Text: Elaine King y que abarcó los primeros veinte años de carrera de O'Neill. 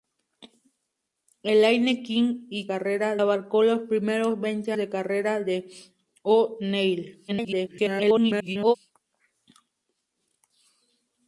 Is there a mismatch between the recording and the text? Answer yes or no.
yes